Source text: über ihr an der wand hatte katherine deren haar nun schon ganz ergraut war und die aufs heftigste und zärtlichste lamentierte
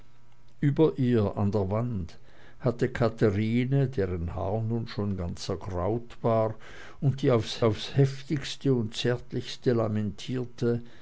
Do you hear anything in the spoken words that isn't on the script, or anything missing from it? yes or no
yes